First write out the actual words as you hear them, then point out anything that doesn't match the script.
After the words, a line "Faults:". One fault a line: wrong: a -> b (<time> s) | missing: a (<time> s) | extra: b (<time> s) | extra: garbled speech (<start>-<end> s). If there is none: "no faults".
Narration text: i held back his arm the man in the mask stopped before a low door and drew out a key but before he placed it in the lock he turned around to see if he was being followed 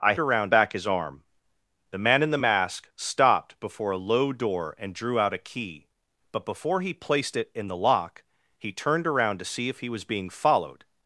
i around back his arm the man in the mask stopped before a low door and drew out a key but before he placed it in the lock he turned around to see if he was being followed
Faults:
wrong: held -> around (0.2 s)